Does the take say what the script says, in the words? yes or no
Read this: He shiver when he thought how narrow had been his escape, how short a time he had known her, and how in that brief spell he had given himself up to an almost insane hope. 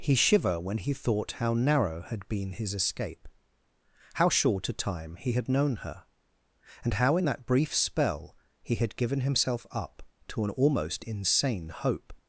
yes